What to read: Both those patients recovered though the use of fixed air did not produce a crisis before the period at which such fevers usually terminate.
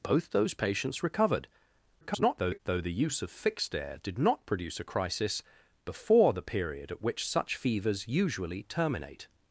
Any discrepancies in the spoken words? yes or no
yes